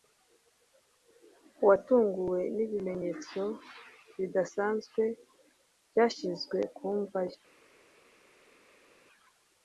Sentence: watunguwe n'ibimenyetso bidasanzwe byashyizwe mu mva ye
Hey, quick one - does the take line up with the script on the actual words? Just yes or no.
no